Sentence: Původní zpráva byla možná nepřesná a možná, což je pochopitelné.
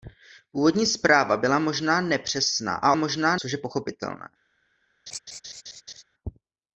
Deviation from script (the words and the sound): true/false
true